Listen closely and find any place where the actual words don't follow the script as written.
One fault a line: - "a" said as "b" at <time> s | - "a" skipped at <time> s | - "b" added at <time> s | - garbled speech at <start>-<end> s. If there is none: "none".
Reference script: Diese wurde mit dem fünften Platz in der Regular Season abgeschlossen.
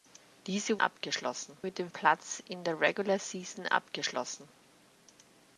- "wurde" said as "abgeschlossen" at 0.8 s
- "fünften" skipped at 1.9 s